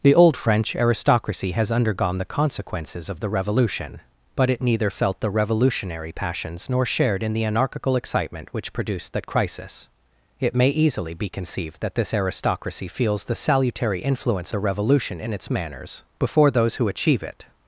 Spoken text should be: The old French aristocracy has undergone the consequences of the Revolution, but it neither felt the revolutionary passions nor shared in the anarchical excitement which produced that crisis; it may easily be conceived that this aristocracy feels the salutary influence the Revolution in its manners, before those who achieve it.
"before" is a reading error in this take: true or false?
false